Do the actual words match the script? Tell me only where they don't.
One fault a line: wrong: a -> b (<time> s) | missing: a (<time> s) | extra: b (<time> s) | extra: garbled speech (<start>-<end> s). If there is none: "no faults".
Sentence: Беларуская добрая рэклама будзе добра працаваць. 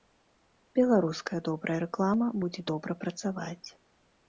no faults